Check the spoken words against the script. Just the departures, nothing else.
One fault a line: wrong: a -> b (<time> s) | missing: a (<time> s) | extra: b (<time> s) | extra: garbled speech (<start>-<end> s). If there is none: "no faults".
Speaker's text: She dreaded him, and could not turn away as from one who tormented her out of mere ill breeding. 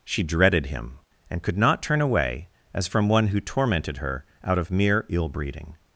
no faults